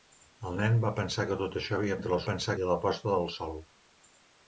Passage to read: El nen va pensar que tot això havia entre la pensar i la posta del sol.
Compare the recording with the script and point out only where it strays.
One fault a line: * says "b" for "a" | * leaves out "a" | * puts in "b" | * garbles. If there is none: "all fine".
all fine